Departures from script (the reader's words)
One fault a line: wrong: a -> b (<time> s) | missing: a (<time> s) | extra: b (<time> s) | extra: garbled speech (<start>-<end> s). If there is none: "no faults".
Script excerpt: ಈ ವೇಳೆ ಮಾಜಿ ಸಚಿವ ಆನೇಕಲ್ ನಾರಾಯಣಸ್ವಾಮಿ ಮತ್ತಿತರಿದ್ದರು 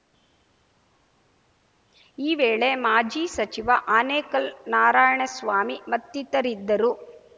no faults